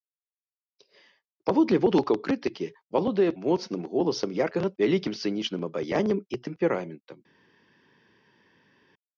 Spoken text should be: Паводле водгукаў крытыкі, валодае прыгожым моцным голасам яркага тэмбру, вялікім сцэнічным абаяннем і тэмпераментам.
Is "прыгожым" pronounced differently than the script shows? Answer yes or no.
yes